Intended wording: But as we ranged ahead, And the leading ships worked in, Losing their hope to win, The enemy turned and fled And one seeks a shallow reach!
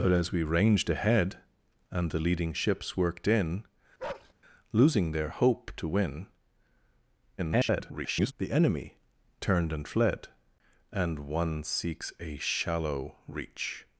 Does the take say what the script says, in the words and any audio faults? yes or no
no